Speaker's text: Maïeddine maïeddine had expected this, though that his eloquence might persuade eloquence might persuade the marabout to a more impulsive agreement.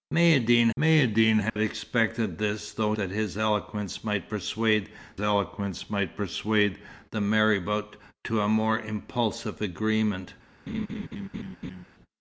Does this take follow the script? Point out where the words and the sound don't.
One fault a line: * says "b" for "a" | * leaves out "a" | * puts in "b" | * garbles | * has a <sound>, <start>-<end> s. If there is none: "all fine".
* has a dropout, 1.5-1.6 s
* has a laugh, 10.7-11.8 s